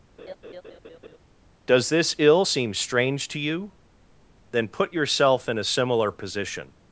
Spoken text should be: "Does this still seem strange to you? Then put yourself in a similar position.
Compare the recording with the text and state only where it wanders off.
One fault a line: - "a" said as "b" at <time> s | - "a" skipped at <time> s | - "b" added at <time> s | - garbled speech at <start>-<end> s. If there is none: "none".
- "still" said as "ill" at 2.2 s